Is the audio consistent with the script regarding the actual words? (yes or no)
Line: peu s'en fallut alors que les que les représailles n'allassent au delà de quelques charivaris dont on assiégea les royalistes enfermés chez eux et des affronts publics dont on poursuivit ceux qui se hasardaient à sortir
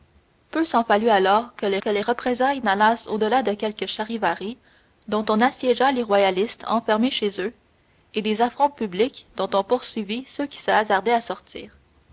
yes